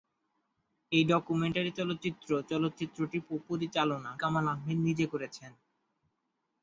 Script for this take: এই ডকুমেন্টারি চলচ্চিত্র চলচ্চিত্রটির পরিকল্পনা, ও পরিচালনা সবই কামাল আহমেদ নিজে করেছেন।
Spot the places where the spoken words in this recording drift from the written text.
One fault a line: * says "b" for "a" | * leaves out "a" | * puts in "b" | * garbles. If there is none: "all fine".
* leaves out "পরিকল্পনা"
* leaves out "সবই"